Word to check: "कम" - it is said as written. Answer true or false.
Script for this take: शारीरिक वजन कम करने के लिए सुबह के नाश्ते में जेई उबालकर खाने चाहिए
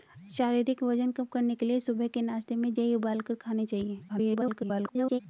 true